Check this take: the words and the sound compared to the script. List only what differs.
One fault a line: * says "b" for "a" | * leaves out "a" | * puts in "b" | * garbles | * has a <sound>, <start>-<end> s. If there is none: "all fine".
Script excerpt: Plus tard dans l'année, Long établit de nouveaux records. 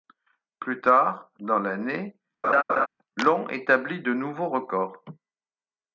* has a laugh, 2.4-2.9 s